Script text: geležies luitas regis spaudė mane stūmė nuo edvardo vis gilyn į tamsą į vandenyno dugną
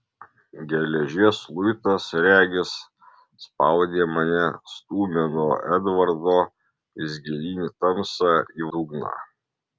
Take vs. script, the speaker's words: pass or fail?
fail